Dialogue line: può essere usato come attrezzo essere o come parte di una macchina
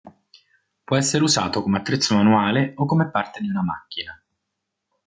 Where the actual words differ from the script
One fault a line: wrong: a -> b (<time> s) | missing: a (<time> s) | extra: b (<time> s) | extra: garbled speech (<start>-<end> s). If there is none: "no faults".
wrong: essere -> manuale (2.1 s)